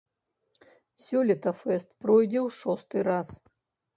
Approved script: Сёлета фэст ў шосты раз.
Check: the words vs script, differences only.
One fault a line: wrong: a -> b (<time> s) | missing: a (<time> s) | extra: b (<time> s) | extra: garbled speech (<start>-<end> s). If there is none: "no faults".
extra: пройдзе (2.0 s)